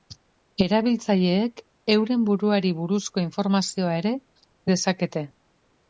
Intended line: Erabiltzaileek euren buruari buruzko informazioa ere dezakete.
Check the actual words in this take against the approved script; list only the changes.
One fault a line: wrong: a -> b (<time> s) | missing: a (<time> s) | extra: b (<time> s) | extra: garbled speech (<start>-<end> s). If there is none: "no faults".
no faults